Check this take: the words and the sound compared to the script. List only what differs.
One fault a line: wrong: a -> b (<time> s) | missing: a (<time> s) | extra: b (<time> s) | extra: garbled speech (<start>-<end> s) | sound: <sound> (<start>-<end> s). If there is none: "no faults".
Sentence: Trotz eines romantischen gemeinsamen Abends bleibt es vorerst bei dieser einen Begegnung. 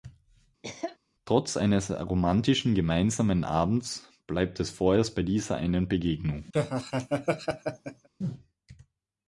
sound: cough (0.6-1.0 s)
sound: laugh (6.5-8.1 s)